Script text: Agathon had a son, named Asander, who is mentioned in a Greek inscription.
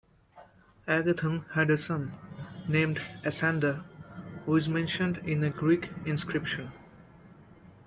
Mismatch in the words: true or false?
false